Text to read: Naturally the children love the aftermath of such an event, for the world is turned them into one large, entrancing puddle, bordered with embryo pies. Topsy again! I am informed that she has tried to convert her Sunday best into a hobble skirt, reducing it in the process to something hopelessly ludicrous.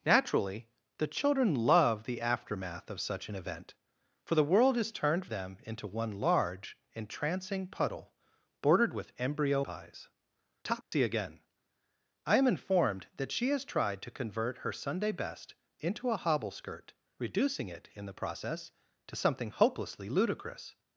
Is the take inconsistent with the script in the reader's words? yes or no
no